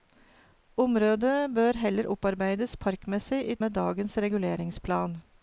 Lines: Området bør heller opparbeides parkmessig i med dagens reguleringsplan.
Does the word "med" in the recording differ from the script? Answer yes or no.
no